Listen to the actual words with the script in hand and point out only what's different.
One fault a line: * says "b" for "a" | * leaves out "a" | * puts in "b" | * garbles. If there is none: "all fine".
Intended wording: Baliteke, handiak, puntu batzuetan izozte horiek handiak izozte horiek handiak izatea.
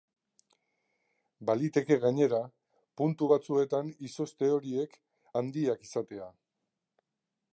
* says "gainera" for "handiak"
* leaves out "izozte horiek handiak"